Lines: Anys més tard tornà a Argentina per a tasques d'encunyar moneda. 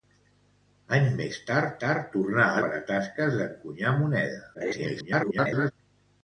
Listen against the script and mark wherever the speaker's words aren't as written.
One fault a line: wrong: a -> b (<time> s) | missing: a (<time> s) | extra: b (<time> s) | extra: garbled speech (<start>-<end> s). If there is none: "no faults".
extra: tard (1.8 s)
missing: Argentina (2.6 s)
extra: garbled speech (4.5-5.7 s)